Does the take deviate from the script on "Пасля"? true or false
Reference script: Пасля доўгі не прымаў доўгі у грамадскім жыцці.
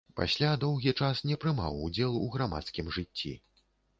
false